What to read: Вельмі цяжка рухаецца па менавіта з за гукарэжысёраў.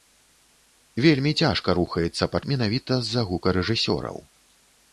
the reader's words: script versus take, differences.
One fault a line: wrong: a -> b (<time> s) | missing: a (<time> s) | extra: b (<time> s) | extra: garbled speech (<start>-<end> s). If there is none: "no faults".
no faults